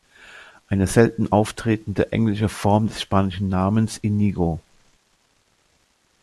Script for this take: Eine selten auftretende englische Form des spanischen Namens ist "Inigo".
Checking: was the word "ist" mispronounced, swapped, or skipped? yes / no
yes